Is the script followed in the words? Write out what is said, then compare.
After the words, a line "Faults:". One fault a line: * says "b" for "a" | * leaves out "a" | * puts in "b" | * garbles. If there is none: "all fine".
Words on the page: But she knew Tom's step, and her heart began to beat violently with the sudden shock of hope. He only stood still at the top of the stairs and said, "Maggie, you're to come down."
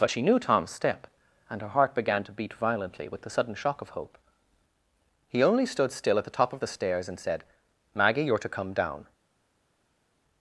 But she knew Tom's step, and her heart began to beat violently with the sudden shock of hope. He only stood still at the top of the stairs and said, "Maggie, you're to come down."
Faults:
all fine